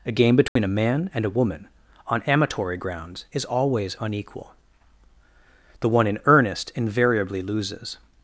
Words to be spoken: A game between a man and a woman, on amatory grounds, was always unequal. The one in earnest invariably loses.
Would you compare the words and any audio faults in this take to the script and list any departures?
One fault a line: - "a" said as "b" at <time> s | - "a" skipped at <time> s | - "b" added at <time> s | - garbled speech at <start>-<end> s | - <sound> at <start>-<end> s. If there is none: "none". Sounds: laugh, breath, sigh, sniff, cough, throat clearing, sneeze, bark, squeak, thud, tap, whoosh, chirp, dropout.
- dropout at 0.5-0.6 s
- "was" said as "is" at 3.3 s